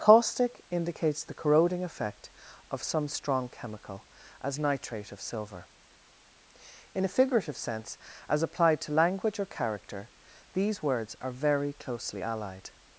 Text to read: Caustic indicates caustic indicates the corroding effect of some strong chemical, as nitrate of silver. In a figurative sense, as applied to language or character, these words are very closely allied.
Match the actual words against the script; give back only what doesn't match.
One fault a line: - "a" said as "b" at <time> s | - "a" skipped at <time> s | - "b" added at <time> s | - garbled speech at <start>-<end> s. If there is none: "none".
- "caustic indicates" skipped at 1.2 s